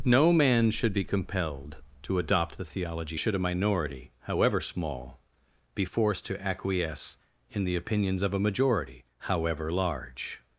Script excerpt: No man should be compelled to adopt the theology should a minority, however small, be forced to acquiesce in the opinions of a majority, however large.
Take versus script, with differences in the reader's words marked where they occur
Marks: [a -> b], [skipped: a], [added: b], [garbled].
No man should be compelled to adopt the theology should a minority, however small, be forced to acquiesce in the opinions of a majority, however large.